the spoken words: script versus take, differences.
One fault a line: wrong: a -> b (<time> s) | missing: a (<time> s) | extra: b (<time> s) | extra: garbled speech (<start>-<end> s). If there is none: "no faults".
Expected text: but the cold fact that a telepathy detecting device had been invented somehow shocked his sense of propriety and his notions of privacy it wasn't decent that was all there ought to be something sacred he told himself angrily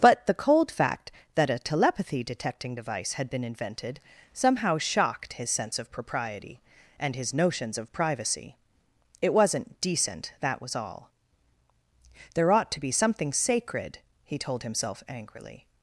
no faults